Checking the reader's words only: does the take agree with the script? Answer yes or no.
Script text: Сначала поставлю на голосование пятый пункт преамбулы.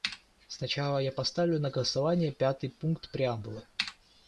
no